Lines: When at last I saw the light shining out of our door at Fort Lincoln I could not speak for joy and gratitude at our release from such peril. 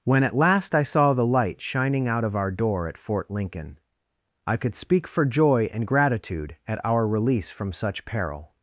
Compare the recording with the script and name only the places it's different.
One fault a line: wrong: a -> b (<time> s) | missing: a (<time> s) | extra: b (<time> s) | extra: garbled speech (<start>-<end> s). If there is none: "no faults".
missing: not (4.7 s)